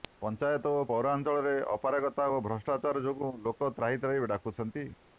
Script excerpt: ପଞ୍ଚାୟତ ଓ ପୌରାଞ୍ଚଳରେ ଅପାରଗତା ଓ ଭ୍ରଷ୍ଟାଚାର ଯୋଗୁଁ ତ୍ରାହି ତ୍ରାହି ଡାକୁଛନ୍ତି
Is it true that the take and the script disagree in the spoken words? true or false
true